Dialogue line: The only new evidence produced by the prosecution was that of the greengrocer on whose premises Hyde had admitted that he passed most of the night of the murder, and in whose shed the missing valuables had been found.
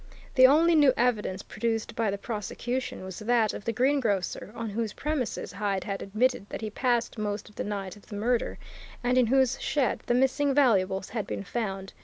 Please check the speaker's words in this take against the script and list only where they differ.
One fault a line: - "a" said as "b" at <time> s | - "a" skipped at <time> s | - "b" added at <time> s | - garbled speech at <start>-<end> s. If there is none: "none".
none